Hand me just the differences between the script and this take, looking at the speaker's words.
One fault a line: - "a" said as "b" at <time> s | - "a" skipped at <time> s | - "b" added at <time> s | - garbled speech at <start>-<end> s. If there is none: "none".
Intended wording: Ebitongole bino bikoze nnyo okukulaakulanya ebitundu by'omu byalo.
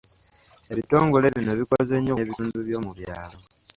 - "okukulaakulanya" skipped at 2.1 s